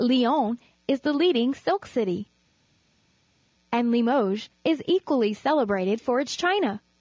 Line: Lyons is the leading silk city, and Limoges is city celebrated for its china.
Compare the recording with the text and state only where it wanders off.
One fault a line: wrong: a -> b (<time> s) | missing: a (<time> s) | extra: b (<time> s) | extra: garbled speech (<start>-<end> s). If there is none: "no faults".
wrong: city -> equally (4.9 s)